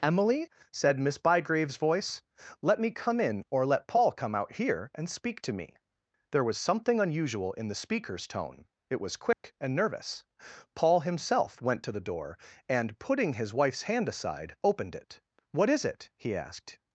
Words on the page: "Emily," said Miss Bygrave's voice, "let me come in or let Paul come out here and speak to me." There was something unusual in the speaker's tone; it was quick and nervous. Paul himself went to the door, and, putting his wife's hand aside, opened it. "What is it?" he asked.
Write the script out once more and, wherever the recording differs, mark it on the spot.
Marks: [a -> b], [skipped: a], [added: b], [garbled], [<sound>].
"Emily," said Miss Bygrave's voice, "let me come in or let Paul come out here and speak to me." There was something unusual in the speaker's tone; it was quick [dropout] and nervous. Paul himself went to the door, and, putting his wife's hand aside, opened it. "What is it?" he asked.